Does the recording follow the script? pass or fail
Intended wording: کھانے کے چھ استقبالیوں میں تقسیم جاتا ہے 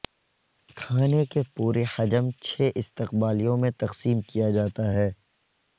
fail